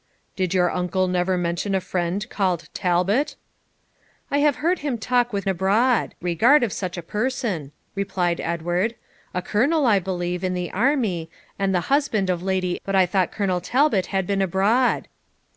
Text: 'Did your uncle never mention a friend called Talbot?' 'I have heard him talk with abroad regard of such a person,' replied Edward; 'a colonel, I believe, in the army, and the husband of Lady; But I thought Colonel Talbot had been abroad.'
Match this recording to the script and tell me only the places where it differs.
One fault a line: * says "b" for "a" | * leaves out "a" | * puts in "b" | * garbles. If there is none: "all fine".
all fine